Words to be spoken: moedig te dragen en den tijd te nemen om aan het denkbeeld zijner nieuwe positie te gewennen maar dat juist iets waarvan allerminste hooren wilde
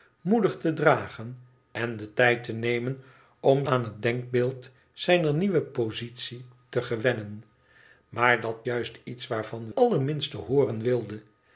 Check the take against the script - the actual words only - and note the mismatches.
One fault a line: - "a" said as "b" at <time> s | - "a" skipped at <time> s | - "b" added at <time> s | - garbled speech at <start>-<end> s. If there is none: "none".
none